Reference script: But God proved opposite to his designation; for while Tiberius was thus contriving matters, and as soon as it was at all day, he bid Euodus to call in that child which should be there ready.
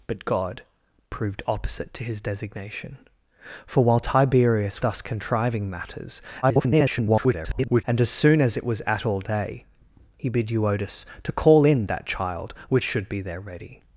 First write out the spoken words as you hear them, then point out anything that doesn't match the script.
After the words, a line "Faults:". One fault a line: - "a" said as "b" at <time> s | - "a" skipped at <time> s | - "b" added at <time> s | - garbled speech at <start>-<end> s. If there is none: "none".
But God proved opposite to his designation; for while Tiberius thus contriving matters, [garbled] and as soon as it was at all day, he bid Euodus to call in that child which should be there ready.
Faults:
- "was" skipped at 4.8 s
- garbled speech at 6.4-7.8 s